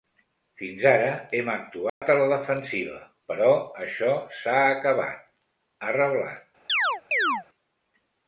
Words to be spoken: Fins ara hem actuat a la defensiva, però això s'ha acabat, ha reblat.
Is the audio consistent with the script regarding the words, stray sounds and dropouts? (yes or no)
no